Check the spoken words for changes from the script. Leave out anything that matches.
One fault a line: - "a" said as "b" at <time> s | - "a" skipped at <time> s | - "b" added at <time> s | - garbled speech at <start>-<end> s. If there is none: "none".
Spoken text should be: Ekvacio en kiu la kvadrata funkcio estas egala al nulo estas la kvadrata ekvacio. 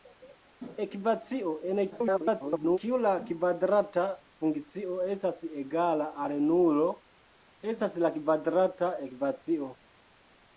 - garbled speech at 1.9-2.8 s